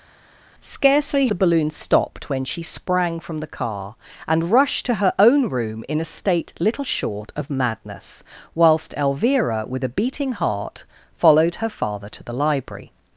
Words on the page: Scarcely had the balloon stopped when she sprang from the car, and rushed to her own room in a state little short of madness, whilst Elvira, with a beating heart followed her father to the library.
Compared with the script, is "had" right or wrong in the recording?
wrong